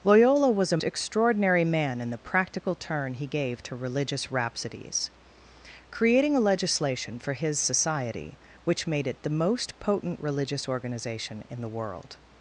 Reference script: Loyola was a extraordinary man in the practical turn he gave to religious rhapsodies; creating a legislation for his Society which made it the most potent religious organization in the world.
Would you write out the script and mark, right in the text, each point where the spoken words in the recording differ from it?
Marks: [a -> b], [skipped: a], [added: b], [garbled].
Loyola was a extraordinary man in the practical turn he gave to religious rhapsodies; creating a legislation for his Society which made it the most potent religious organization in the world.